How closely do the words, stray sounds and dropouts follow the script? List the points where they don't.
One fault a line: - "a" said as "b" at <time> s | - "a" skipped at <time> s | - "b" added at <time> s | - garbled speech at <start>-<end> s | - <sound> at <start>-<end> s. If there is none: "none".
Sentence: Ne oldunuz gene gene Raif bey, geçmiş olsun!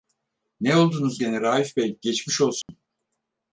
- "gene" skipped at 1.4 s
- dropout at 2.6-2.7 s